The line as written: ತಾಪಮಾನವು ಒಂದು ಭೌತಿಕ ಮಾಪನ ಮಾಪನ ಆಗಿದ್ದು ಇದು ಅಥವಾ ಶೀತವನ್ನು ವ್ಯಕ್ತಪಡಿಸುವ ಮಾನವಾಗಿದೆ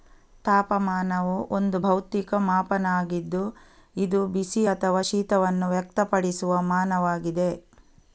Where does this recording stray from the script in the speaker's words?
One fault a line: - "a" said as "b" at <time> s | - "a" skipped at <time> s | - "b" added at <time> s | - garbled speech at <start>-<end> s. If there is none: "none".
- "ಮಾಪನ" skipped at 2.8 s
- "ಬಿಸಿ" added at 4.3 s